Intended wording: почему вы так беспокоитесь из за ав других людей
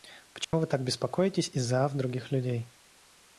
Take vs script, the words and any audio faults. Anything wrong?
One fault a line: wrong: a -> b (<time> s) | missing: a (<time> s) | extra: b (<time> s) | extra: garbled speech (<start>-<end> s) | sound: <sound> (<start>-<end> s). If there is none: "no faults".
sound: dropout (0.4-0.5 s)